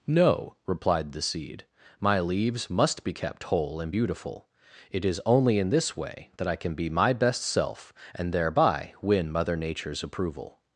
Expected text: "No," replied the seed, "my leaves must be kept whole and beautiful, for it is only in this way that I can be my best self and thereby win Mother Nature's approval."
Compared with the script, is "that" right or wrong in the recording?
right